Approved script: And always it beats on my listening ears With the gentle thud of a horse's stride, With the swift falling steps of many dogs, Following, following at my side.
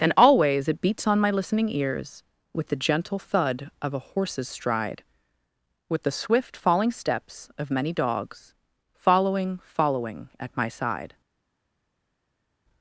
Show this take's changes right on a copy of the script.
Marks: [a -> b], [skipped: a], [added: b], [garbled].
And always it beats on my listening ears With the gentle thud of a horse's stride, With the swift falling steps of many dogs, Following, following at my side.